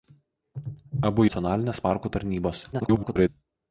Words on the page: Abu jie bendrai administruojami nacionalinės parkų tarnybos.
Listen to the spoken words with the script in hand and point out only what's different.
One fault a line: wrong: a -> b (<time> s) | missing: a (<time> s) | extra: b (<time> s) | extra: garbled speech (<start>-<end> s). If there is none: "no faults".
missing: jie bendrai administruojami (1.3 s)
extra: garbled speech (2.7-3.3 s)